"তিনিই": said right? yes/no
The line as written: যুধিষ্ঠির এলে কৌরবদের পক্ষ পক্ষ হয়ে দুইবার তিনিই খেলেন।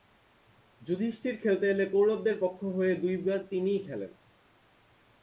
yes